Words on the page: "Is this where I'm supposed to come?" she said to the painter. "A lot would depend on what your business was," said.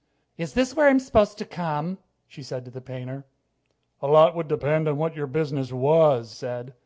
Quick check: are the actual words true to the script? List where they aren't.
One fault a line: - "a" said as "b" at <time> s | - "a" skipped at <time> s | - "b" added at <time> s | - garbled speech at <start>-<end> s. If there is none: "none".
none